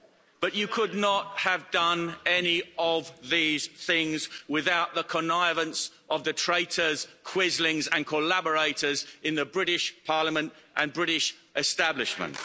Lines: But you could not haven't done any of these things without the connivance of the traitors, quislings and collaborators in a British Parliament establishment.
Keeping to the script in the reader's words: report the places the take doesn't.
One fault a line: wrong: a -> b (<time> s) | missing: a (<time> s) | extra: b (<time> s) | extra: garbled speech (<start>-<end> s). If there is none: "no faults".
wrong: haven't -> have (1.4 s)
wrong: a -> the (9.3 s)
extra: and British (10.7 s)